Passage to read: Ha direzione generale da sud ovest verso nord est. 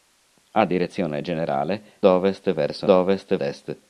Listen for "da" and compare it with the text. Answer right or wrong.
wrong